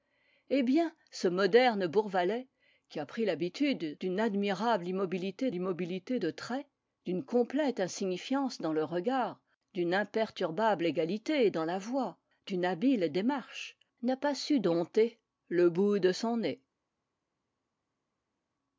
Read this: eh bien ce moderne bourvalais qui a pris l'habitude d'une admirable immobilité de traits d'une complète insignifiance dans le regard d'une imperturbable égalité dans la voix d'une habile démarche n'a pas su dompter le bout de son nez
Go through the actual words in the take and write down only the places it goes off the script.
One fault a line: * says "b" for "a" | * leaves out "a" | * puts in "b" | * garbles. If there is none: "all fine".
* puts in "immobilité"